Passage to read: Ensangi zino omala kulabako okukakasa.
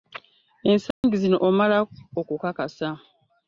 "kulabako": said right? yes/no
no